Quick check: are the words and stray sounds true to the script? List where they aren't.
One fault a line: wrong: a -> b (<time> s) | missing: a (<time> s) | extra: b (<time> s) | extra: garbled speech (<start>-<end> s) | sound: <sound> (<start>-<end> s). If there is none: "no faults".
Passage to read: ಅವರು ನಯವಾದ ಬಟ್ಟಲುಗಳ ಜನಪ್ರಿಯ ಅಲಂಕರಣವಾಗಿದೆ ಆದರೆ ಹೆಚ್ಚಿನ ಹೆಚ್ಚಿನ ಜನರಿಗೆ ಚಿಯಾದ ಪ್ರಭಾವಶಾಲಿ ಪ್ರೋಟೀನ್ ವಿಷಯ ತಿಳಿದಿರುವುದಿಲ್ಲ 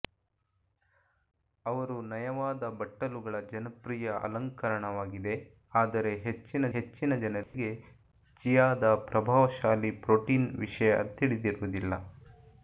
sound: dropout (7.4-7.5 s)